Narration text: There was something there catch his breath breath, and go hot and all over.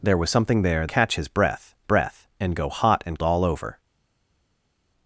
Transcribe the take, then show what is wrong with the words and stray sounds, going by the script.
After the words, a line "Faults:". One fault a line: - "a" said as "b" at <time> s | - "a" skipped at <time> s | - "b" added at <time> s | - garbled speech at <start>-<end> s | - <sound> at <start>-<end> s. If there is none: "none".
There was something there catch his breath breath, and go hot and all over.
Faults:
none